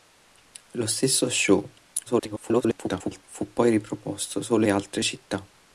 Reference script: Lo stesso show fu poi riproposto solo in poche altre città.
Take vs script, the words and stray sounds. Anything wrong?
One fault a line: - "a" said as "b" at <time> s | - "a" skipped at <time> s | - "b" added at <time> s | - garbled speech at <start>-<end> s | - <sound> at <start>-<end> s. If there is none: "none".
- garbled speech at 2.1-3.2 s
- "in poche" skipped at 4.7 s